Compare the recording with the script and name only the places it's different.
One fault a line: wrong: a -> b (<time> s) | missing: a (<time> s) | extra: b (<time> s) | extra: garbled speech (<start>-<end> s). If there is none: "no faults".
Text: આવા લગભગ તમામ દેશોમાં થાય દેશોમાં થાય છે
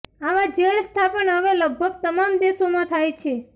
extra: જેલ સ્થાપન હવે (0.6 s)
missing: દેશોમાં થાય (3.1 s)